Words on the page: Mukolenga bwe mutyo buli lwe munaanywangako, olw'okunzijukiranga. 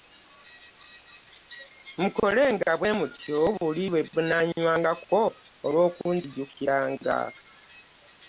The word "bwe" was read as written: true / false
true